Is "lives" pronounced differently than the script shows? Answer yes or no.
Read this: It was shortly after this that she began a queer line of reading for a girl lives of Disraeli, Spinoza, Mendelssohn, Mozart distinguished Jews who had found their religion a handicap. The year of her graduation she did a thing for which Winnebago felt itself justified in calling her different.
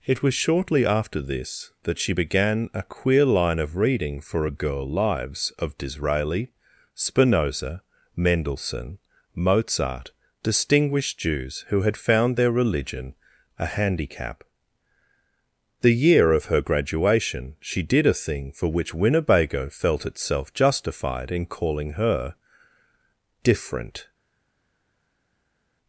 no